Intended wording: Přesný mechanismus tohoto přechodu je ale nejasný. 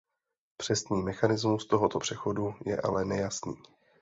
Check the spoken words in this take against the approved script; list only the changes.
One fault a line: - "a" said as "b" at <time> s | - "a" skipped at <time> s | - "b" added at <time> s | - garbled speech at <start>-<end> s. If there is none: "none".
none